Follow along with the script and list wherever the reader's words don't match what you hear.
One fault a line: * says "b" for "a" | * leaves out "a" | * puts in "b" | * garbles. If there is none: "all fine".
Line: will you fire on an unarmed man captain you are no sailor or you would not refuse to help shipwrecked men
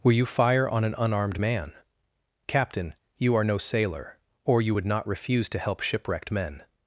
all fine